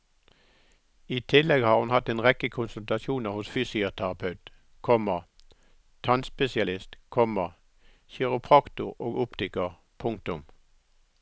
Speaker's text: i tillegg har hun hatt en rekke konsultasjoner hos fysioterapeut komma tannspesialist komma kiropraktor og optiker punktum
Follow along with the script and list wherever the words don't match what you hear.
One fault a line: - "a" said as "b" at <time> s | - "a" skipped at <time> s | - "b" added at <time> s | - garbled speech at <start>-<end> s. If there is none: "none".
none